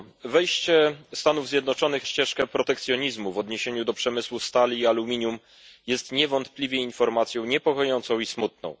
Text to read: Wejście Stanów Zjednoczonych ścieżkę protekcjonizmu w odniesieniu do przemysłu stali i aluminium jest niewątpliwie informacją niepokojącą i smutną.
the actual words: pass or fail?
pass